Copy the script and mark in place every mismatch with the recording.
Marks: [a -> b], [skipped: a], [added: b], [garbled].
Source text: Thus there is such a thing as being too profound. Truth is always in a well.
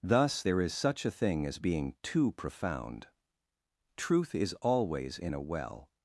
Thus there is such a thing as being too profound. Truth is always in a well.